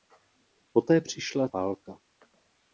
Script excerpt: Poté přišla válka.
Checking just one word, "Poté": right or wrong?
right